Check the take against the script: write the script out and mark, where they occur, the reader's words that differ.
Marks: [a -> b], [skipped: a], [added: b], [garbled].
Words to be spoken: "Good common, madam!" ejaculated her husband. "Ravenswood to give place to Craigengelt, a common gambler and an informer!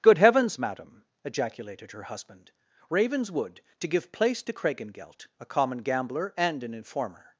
"Good [common, -> heavens] madam!" ejaculated her husband. "Ravenswood to give place to Craigengelt, a common gambler and an informer!